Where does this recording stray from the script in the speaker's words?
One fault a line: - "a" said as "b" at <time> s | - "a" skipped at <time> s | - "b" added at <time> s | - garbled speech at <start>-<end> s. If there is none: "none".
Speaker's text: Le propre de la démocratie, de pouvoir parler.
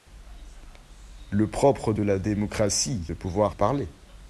none